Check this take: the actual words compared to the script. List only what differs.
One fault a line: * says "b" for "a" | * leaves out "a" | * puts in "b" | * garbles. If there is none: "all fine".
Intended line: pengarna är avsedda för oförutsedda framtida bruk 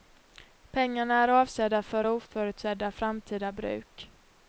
all fine